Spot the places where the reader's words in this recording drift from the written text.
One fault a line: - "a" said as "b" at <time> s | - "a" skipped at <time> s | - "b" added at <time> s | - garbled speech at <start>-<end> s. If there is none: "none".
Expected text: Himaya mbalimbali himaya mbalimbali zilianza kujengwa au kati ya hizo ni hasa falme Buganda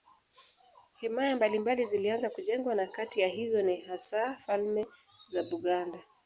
- "himaya mbalimbali" skipped at 1.9 s
- "au" said as "na" at 2.8 s
- "za" added at 5.3 s